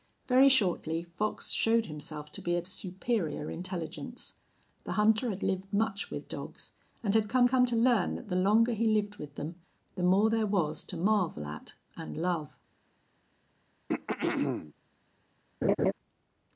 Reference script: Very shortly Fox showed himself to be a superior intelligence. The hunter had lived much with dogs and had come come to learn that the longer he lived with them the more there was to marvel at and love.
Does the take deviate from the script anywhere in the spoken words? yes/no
no